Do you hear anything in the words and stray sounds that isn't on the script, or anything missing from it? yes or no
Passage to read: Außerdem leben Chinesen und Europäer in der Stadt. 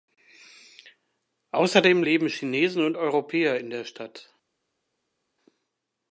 no